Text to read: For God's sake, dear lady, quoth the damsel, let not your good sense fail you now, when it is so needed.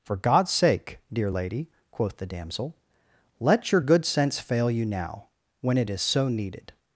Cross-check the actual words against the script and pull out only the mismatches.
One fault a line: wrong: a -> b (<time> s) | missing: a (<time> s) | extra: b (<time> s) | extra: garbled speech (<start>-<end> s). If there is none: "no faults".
missing: not (3.7 s)